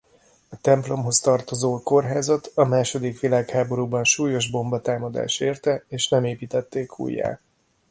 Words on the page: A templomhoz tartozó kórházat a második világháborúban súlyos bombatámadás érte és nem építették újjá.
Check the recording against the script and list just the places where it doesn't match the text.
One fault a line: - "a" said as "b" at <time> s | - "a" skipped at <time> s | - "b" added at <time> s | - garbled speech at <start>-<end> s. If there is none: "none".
none